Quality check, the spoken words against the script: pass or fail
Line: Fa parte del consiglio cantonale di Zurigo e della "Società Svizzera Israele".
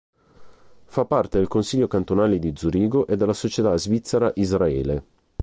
pass